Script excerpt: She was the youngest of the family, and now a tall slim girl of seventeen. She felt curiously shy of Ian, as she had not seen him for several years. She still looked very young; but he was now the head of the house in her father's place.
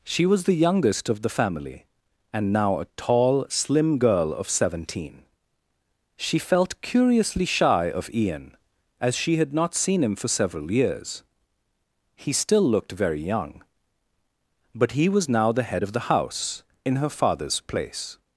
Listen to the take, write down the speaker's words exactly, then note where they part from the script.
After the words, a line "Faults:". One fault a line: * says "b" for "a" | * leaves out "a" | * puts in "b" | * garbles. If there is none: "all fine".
She was the youngest of the family, and now a tall slim girl of seventeen. She felt curiously shy of Ian, as she had not seen him for several years. He still looked very young; but he was now the head of the house in her father's place.
Faults:
* says "He" for "She"